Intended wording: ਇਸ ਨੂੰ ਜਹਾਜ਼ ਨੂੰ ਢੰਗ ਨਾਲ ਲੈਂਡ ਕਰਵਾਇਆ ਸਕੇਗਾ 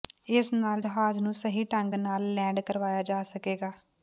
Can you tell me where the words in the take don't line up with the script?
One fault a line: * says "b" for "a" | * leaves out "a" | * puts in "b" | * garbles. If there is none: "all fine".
* says "ਨਾਲ" for "ਨੂੰ"
* puts in "ਸਹੀ"
* puts in "ਜਾ"